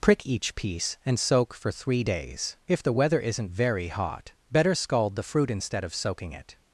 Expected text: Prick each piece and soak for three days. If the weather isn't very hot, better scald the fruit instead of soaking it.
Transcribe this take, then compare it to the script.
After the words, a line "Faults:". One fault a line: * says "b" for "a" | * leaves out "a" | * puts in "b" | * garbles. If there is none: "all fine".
Prick each piece and soak for three days. If the weather isn't very hot, better scald the fruit instead of soaking it.
Faults:
all fine